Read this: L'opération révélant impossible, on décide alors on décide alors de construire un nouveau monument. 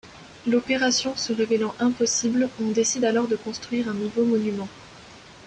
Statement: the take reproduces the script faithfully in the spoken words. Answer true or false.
false